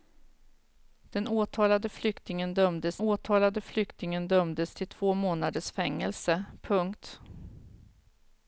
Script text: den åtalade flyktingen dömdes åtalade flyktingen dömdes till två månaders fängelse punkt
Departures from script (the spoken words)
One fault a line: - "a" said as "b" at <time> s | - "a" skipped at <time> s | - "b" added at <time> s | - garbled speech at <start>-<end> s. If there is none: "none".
none